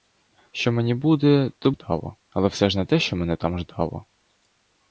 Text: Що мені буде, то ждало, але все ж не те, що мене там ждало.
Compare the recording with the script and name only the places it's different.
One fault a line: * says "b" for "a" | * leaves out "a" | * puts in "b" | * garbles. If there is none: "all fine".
all fine